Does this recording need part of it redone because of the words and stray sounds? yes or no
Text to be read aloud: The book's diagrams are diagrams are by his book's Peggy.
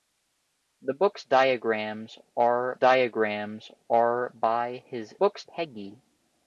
no